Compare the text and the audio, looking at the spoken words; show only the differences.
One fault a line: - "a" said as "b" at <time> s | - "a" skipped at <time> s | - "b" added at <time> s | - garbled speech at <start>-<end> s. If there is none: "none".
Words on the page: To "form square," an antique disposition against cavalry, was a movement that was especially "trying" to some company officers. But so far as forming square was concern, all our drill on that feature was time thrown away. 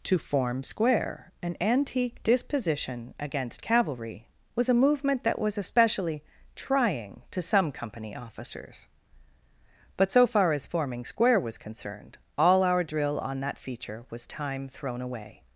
- "concern" said as "concerned" at 11.6 s